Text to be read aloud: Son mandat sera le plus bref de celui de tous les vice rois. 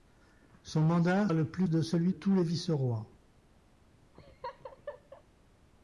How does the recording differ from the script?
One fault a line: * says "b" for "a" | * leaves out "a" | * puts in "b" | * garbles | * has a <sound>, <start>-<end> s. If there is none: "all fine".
* leaves out "sera"
* leaves out "bref"
* leaves out "de"
* has a laugh, 4.1-5.2 s